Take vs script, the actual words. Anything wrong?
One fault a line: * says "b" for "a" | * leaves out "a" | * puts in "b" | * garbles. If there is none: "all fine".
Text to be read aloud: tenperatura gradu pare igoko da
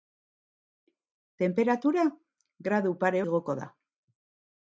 all fine